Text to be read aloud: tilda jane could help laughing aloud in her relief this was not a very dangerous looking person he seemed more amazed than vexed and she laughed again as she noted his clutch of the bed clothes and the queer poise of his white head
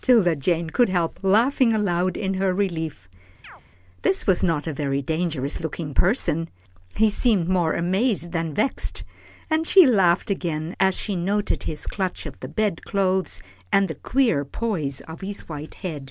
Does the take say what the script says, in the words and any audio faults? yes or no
no